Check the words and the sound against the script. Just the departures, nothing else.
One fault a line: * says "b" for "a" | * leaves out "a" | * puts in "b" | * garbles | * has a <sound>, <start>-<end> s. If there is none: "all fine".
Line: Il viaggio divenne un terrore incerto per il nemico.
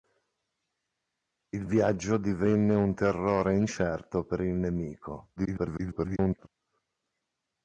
* garbles